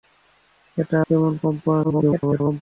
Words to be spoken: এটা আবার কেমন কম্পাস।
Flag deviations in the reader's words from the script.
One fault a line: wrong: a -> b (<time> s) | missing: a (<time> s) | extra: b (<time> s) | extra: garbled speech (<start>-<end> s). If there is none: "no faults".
missing: আবার (1.0 s)
extra: garbled speech (1.8-2.6 s)